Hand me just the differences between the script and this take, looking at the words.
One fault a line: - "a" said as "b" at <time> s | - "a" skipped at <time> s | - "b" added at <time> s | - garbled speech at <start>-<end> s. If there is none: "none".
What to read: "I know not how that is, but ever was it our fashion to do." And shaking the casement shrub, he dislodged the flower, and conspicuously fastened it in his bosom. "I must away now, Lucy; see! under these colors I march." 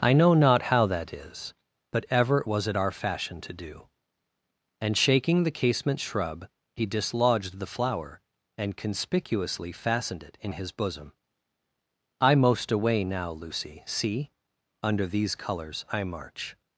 - "must" said as "most" at 12.4 s